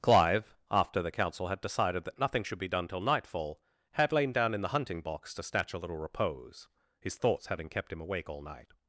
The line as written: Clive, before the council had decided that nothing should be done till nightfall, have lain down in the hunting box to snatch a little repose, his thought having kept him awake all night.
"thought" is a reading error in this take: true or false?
true